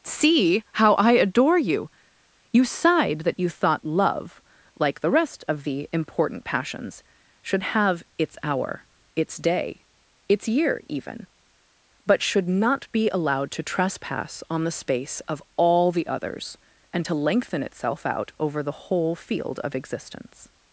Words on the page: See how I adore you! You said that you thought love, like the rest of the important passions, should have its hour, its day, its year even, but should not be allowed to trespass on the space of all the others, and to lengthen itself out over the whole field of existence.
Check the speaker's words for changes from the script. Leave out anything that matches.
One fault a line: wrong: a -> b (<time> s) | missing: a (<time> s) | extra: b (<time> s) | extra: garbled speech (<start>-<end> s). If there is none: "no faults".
wrong: said -> sighed (2.6 s)